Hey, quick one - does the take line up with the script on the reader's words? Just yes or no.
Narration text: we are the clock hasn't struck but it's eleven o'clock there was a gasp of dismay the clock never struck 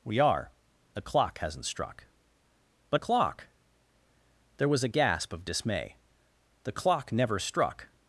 no